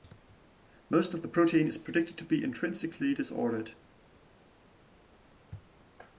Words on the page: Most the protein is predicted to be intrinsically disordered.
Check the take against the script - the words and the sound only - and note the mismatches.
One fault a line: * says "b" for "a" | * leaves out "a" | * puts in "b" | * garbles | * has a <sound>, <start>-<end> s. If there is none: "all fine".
* puts in "of"